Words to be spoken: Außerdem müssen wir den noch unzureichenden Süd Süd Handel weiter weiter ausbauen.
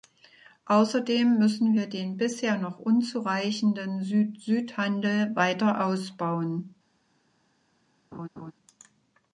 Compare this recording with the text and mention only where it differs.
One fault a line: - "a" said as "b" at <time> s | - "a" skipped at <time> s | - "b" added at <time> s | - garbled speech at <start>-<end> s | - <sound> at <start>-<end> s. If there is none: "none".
- "bisher" added at 2.2 s
- "weiter" skipped at 5.9 s
- laugh at 8.1-8.5 s